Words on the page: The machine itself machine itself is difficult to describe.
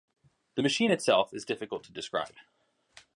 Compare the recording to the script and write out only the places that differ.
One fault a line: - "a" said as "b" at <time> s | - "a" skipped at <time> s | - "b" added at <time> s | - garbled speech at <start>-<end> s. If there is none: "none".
- "machine itself" skipped at 1.3 s